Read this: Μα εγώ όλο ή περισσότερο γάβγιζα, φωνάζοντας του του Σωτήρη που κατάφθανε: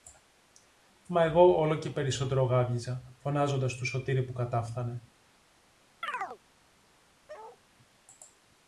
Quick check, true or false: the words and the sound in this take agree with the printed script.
false